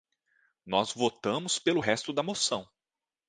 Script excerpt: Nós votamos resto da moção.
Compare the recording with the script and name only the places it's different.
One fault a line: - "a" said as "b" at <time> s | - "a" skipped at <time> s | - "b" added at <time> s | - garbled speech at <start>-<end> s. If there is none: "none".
- "pelo" added at 1.6 s